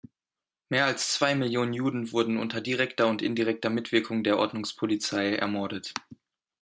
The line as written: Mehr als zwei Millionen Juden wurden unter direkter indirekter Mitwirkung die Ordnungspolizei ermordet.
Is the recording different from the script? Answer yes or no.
yes